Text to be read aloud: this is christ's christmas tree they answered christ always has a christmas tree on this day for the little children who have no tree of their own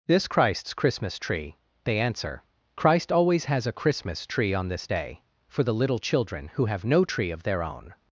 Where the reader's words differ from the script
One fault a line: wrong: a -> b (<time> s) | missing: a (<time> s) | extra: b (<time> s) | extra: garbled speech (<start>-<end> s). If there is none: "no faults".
missing: is (0.3 s)
wrong: answered -> answer (2.0 s)